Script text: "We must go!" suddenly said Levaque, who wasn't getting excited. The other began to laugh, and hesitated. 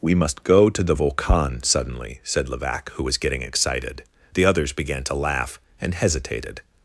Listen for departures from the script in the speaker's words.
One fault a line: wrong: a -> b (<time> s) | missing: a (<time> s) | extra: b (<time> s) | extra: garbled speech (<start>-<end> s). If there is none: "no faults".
extra: to the Volcan (0.7 s)
wrong: wasn't -> was (3.0 s)
wrong: other -> others (4.5 s)